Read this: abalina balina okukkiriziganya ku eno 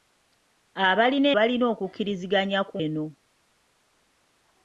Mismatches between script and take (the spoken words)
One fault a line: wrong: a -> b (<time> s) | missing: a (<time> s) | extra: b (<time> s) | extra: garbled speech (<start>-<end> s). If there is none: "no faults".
no faults